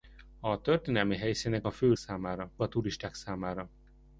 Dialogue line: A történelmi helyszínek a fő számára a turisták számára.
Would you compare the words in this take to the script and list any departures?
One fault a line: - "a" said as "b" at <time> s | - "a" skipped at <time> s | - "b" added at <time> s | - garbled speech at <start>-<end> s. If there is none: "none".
none